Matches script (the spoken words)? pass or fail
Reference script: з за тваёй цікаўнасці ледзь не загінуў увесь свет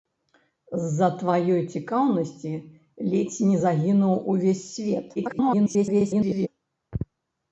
fail